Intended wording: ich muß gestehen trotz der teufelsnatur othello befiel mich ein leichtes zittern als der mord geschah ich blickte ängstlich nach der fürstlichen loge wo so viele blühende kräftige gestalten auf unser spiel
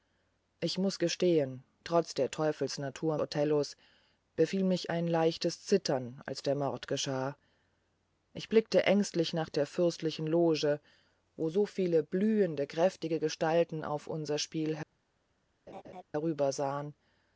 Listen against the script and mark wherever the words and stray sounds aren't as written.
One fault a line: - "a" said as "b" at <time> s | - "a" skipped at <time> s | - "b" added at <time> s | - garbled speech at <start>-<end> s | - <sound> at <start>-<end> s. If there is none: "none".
- laugh at 15.7-16.0 s